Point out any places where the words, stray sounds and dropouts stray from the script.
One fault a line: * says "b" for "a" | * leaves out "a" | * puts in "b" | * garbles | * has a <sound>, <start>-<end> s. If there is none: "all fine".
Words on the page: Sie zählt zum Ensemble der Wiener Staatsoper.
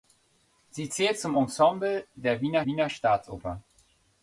* puts in "Wiener"